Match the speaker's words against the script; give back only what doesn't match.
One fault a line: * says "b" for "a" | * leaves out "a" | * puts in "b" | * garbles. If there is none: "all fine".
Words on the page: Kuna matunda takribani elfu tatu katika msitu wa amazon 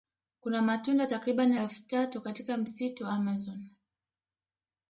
all fine